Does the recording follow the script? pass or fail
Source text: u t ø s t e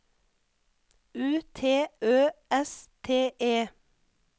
pass